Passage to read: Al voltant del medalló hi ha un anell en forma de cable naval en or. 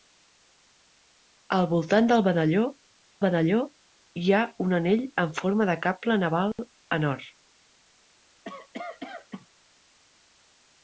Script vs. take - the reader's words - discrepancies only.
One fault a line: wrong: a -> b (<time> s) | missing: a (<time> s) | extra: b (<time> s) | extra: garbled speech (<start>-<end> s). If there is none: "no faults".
extra: medalló (3.2 s)